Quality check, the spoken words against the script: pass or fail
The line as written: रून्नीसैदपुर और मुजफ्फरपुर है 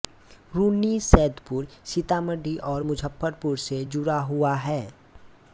fail